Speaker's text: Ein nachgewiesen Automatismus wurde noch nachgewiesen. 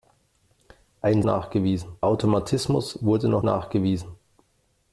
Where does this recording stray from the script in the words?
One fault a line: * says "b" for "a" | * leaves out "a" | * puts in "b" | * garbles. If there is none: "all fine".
all fine